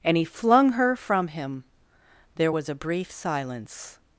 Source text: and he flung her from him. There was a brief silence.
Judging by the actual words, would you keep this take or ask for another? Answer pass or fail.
pass